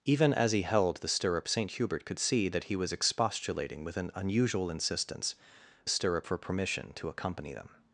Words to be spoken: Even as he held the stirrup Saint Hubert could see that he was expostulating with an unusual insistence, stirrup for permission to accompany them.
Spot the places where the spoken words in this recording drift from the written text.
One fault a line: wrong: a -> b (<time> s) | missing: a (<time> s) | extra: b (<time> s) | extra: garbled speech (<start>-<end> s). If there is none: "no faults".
no faults